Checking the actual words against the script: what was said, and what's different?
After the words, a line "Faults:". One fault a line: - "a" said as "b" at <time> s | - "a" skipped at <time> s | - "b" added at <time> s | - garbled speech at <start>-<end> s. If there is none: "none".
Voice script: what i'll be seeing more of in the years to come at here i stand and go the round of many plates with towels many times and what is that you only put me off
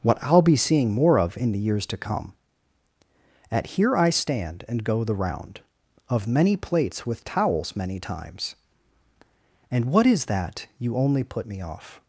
what i'll be seeing more of in the years to come at here i stand and go the round of many plates with towels many times and what is that you only put me off
Faults:
none